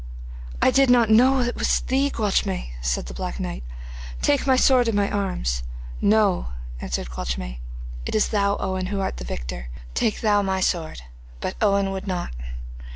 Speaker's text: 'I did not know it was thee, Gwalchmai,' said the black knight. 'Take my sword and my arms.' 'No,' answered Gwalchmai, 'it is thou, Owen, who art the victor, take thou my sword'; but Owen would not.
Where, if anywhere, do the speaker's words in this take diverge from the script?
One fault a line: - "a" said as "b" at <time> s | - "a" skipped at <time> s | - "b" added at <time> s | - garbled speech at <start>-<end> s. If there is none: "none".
none